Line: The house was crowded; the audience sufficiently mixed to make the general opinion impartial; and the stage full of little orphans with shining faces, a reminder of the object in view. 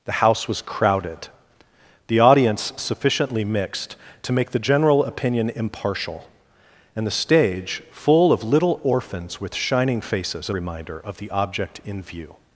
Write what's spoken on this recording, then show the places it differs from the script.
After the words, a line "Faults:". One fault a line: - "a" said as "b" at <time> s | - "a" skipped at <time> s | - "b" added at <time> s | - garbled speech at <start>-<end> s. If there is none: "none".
The house was crowded; the audience sufficiently mixed to make the general opinion impartial; and the stage full of little orphans with shining faces, a reminder of the object in view.
Faults:
none